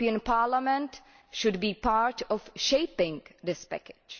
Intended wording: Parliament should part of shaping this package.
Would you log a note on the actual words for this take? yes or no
yes